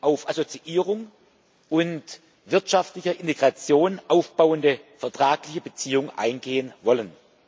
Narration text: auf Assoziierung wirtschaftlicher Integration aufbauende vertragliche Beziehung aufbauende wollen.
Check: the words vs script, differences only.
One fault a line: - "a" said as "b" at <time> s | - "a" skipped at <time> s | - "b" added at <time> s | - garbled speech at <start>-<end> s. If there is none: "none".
- "und" added at 1.7 s
- "aufbauende" said as "eingehen" at 6.2 s